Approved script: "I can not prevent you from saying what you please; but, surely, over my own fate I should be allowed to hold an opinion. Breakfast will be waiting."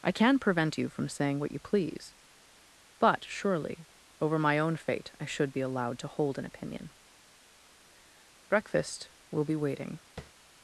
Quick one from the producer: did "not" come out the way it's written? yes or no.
no